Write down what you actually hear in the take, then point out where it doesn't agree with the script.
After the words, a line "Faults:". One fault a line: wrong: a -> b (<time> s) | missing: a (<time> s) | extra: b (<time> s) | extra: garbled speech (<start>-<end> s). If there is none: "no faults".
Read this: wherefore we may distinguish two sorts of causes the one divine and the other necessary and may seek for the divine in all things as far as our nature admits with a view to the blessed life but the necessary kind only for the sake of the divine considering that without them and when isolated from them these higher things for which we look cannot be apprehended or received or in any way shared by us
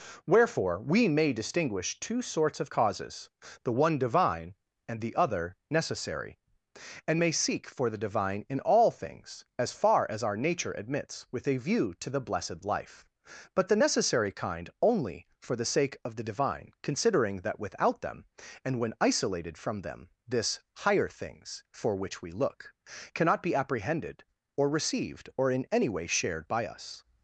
wherefore we may distinguish two sorts of causes the one divine and the other necessary and may seek for the divine in all things as far as our nature admits with a view to the blessed life but the necessary kind only for the sake of the divine considering that without them and when isolated from them this higher things for which we look cannot be apprehended or received or in any way shared by us
Faults:
wrong: these -> this (20.3 s)